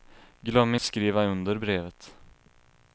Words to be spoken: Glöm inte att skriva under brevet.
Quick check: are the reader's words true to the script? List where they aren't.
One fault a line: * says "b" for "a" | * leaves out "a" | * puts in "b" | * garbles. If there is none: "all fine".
* leaves out "inte att"